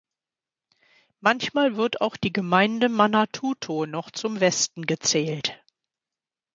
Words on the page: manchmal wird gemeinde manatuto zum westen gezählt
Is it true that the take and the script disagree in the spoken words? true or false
true